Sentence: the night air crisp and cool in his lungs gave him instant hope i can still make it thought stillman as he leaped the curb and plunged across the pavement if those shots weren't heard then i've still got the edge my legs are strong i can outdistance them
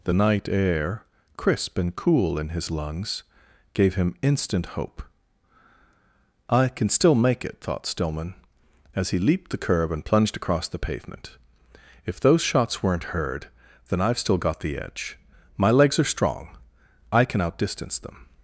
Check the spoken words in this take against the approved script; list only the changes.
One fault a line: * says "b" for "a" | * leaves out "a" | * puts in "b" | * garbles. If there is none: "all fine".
all fine